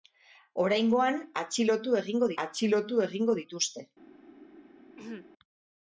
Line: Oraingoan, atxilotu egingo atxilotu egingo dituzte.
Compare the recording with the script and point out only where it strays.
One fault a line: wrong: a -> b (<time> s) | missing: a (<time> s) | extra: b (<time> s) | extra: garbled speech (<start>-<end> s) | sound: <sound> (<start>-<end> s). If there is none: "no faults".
sound: throat clearing (5.0-5.3 s)